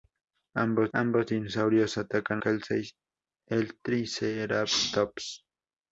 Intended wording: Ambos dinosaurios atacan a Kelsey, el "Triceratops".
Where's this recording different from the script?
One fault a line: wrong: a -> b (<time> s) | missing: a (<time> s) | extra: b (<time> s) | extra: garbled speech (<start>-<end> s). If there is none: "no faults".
extra: ambos (0.9 s)
missing: a (2.4 s)